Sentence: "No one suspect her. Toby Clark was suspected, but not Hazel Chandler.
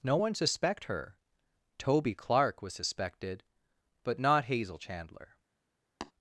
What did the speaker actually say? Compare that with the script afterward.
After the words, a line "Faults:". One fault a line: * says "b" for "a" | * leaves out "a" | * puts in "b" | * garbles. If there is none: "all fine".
"No one suspect her. Toby Clark was suspected, but not Hazel Chandler.
Faults:
all fine